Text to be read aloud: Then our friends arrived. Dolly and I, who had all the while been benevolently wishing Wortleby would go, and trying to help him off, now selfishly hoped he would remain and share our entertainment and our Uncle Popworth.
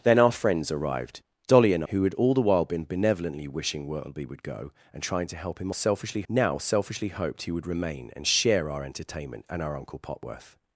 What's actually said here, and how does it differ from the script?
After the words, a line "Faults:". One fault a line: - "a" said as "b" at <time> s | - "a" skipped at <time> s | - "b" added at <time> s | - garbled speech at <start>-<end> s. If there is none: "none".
Then our friends arrived. Dolly and who had all the while been benevolently wishing Wortleby would go, and trying to help him selfishly, now selfishly hoped he would remain and share our entertainment and our Uncle Popworth.
Faults:
- "I" skipped at 1.8 s
- "off" said as "selfishly" at 5.7 s